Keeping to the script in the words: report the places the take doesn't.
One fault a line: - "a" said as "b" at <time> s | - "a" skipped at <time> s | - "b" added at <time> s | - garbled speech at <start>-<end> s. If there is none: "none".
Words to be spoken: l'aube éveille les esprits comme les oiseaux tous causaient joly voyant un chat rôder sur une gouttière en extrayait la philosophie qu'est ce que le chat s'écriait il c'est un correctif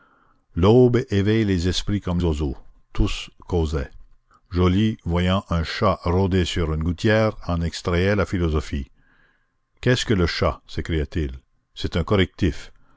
- "les" skipped at 2.2 s